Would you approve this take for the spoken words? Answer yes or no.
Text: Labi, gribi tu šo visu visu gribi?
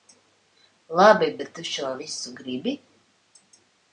no